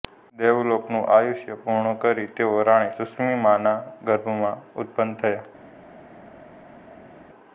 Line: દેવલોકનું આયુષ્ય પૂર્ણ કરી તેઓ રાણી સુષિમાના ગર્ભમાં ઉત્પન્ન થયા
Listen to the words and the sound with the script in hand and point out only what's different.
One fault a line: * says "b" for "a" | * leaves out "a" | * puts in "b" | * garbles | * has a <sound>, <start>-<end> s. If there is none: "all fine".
all fine